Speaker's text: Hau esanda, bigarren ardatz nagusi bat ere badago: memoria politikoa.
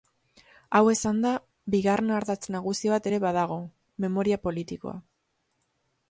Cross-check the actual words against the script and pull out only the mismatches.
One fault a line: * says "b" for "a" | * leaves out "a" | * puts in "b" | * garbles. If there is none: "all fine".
all fine